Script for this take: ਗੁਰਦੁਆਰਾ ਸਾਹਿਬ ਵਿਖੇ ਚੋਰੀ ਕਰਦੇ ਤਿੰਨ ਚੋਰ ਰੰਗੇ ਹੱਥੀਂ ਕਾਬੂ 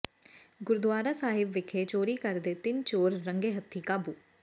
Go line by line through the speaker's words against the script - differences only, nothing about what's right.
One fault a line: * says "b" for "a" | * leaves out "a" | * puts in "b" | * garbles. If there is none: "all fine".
all fine